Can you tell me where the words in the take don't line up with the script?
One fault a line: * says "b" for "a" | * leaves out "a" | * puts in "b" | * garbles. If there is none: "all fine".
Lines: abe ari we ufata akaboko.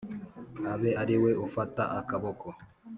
all fine